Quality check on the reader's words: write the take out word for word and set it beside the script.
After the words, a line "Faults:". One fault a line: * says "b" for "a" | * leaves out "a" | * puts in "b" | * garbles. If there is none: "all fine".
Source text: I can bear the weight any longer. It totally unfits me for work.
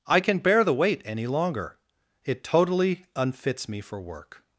I can bear the weight any longer. It totally unfits me for work.
Faults:
all fine